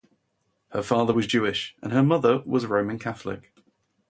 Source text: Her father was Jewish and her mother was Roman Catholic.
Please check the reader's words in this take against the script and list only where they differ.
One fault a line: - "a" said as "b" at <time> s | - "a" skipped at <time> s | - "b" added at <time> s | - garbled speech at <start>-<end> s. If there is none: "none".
none